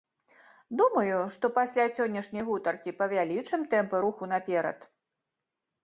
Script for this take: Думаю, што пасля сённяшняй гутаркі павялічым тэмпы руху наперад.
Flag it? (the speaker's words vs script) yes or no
no